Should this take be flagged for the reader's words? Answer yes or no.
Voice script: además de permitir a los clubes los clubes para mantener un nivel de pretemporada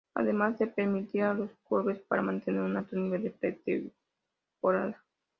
yes